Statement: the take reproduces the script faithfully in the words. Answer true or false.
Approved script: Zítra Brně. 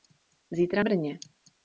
true